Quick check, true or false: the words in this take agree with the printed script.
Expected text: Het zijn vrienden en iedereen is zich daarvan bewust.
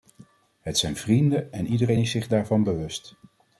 true